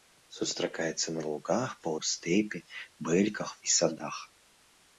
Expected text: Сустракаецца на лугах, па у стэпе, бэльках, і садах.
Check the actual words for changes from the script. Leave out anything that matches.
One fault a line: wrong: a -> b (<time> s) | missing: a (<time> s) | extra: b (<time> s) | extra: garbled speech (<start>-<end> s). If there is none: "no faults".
no faults